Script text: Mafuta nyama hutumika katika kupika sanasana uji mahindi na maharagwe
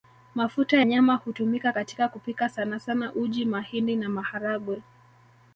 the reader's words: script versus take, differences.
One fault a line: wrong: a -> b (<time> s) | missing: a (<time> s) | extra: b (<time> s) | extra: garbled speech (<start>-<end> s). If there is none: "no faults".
no faults